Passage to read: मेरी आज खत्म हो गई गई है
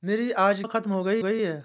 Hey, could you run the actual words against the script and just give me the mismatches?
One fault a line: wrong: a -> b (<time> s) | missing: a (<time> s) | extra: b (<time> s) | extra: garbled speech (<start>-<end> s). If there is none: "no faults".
no faults